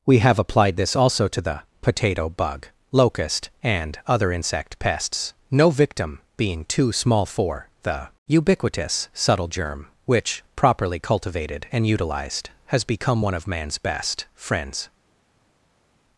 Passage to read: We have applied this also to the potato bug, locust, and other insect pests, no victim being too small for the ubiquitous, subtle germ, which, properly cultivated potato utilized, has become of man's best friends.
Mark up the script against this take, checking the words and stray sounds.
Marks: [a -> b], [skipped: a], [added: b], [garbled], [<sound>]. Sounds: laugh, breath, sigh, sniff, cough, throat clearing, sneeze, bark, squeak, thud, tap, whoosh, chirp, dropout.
We have applied this also to the potato bug, locust, and other insect pests, no victim being too small for the ubiquitous, subtle germ, which, properly cultivated [potato -> and] utilized, has become [added: one] of man's best friends.